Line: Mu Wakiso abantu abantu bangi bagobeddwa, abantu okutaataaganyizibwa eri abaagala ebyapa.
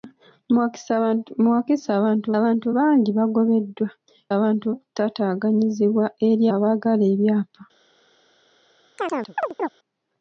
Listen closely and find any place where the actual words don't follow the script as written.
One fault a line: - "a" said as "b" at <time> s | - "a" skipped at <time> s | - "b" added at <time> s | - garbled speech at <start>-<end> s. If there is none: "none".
none